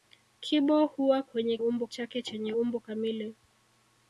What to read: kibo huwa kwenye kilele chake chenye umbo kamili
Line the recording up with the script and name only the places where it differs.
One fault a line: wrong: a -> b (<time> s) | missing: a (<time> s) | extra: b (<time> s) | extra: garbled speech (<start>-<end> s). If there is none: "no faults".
wrong: kilele -> umbo (1.6 s)